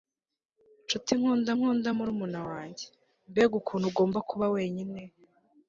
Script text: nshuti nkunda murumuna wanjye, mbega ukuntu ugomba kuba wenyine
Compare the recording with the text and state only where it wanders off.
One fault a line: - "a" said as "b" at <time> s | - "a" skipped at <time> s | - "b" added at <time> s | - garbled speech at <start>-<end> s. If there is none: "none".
- "nkunda" added at 1.6 s